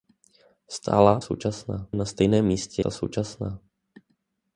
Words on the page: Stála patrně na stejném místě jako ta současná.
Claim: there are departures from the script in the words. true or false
true